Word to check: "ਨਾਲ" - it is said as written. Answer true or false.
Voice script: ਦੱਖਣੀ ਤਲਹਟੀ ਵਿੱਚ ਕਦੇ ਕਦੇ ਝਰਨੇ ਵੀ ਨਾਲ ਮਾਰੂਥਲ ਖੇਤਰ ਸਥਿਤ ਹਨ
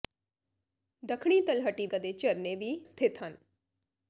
false